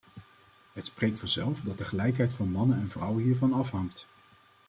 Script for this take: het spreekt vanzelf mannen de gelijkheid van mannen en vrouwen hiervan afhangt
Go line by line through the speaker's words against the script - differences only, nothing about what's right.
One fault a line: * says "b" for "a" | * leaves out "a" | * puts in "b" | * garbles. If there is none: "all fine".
* says "dat" for "mannen"